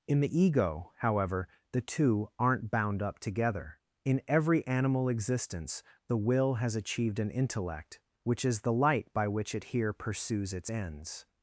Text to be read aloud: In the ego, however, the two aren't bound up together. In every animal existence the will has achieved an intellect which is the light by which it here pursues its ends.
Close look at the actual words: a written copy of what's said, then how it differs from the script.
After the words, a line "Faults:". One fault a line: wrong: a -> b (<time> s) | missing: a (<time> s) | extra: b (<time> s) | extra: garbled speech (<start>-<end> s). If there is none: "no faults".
In the ego, however, the two aren't bound up together. In every animal existence the will has achieved an intellect which is the light by which it here pursues its ends.
Faults:
no faults